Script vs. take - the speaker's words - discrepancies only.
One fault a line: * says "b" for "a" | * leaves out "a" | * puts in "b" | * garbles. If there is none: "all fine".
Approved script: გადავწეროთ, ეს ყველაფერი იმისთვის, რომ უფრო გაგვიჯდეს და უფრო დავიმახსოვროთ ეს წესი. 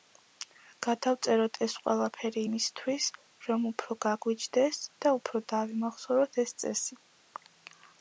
all fine